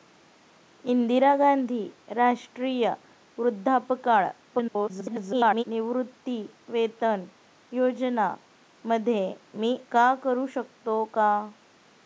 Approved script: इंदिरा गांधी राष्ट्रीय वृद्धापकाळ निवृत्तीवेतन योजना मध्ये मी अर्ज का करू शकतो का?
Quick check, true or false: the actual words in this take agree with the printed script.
false